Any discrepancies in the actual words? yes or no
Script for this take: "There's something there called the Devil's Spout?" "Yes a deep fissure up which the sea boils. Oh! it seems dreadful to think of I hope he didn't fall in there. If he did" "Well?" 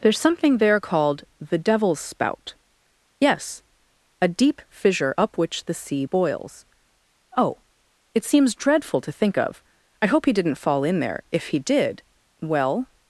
no